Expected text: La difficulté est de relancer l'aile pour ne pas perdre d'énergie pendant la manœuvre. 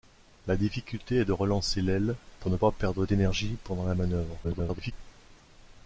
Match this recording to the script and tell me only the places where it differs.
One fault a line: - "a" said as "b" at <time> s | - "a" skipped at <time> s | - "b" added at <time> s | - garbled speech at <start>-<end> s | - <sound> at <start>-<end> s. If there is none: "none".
- garbled speech at 4.4-4.9 s